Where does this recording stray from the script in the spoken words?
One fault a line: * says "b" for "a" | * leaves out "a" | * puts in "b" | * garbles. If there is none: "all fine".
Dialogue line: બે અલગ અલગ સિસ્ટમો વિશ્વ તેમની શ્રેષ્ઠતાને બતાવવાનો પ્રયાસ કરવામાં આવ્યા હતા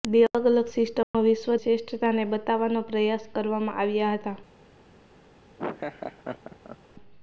* leaves out "તેમની"